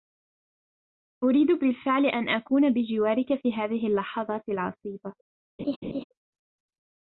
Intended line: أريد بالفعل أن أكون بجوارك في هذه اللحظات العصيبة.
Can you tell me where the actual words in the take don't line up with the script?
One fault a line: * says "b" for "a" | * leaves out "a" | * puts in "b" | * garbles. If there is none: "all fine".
all fine